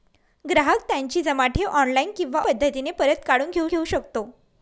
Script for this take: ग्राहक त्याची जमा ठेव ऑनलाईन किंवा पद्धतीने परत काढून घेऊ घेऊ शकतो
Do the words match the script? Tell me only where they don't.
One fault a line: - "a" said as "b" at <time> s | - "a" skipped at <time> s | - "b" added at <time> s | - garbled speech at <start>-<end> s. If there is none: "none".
none